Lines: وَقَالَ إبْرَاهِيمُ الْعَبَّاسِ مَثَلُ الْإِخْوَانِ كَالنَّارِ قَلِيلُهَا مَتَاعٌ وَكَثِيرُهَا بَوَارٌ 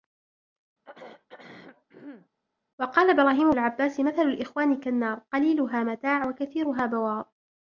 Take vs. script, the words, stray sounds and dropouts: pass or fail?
fail